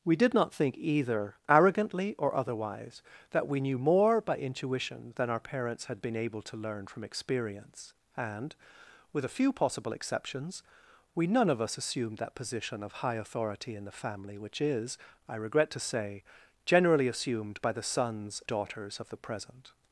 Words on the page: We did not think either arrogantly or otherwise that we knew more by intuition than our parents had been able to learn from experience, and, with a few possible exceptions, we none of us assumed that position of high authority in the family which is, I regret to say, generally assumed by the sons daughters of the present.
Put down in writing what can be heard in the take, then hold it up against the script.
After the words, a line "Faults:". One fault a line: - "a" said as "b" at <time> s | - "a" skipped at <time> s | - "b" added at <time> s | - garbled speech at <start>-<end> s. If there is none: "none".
We did not think either arrogantly or otherwise that we knew more by intuition than our parents had been able to learn from experience, and, with a few possible exceptions, we none of us assumed that position of high authority in the family which is, I regret to say, generally assumed by the sons daughters of the present.
Faults:
none